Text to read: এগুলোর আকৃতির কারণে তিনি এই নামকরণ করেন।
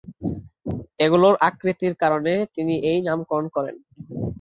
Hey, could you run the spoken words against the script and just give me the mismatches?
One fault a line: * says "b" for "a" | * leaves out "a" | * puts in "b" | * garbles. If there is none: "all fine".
all fine